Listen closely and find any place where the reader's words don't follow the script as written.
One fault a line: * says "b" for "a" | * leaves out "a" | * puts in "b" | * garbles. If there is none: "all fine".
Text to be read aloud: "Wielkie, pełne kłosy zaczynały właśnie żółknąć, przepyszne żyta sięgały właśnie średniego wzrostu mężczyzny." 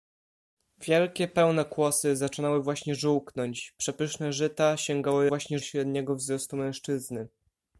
all fine